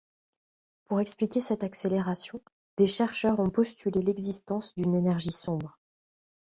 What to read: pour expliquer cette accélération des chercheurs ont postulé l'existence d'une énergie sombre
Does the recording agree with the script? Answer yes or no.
yes